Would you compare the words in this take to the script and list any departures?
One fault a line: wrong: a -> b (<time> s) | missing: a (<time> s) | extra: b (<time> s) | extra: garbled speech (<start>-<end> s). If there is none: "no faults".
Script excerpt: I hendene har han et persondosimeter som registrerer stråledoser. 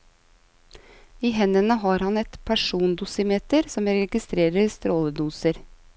no faults